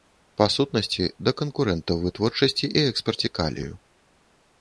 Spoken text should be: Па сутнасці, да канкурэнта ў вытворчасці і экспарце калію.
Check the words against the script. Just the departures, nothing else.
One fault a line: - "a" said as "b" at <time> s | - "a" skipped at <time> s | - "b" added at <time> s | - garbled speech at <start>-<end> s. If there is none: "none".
none